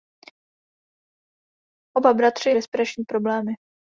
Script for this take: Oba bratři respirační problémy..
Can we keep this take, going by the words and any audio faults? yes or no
yes